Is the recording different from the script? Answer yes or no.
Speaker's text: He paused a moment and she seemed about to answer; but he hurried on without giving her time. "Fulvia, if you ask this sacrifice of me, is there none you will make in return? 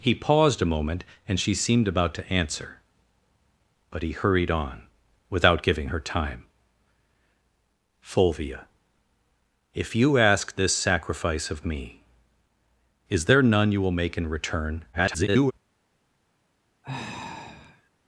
yes